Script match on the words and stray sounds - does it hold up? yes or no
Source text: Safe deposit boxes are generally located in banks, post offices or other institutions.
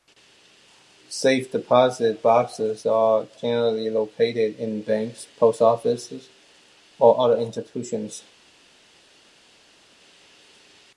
yes